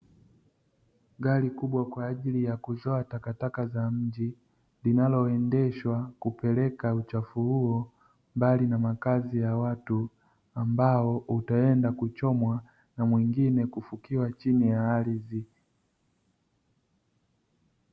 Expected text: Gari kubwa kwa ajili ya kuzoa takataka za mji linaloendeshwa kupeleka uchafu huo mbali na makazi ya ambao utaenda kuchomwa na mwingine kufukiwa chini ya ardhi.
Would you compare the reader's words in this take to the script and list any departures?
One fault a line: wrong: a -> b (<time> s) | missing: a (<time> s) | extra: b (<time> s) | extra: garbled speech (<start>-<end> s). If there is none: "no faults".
extra: watu (9.6 s)